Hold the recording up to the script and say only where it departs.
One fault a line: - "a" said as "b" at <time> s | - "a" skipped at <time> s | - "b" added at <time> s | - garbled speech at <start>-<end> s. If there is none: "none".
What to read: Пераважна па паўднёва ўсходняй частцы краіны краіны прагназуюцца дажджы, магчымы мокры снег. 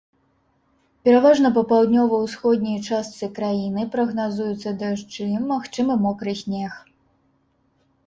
- "краіны" skipped at 3.9 s